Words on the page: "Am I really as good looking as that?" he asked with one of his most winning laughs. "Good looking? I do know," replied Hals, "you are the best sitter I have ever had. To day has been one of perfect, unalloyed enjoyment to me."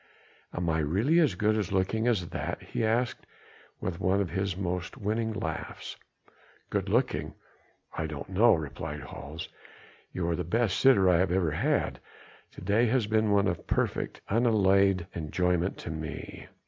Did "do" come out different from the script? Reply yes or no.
yes